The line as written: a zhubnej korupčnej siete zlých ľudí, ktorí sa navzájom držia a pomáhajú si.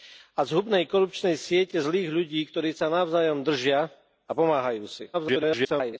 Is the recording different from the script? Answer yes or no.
yes